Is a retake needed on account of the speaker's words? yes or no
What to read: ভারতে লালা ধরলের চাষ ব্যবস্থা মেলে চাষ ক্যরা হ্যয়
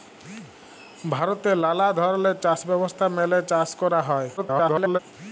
yes